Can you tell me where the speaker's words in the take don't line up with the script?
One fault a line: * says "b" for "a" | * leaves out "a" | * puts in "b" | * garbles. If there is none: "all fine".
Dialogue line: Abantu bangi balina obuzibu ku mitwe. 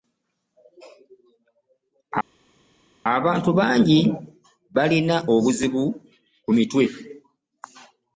all fine